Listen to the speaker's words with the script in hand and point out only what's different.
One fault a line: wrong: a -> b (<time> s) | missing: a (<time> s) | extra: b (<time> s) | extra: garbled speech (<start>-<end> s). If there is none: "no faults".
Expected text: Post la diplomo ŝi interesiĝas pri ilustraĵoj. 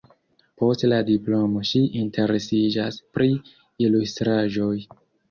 no faults